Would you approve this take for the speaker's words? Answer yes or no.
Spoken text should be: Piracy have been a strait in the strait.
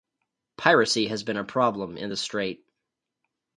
no